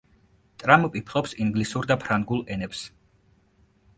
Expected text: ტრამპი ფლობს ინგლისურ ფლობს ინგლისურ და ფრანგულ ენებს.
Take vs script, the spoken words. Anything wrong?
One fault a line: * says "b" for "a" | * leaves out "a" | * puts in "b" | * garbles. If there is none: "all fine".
* leaves out "ფლობს ინგლისურ"